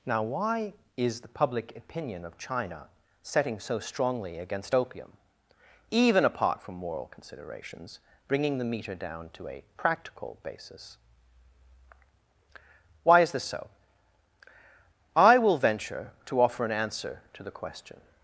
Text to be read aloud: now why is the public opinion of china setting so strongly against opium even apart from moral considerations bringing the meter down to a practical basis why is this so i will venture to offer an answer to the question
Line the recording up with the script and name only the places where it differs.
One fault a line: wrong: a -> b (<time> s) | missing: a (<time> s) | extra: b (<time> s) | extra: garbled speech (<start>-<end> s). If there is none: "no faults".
no faults